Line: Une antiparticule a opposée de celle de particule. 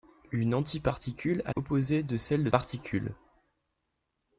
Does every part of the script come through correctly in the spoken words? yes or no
yes